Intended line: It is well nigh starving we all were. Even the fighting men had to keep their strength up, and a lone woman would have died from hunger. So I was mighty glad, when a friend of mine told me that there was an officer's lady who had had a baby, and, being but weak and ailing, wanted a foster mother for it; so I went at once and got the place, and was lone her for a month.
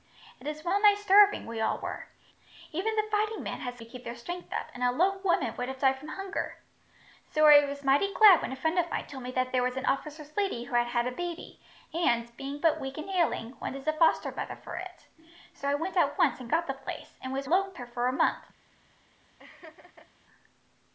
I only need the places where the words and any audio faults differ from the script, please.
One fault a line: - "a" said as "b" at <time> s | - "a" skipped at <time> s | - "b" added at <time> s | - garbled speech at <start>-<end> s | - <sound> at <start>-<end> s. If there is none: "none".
- laugh at 19.4-20.1 s